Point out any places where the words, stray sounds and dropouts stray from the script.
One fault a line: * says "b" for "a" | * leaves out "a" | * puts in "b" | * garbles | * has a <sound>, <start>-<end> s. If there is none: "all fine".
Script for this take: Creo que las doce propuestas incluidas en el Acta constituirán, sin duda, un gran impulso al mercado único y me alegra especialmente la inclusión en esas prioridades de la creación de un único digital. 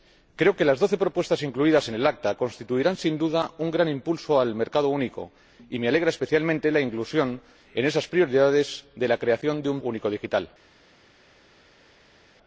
all fine